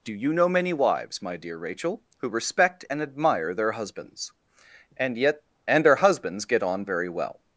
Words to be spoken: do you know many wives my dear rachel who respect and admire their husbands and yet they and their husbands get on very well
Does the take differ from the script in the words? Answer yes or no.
yes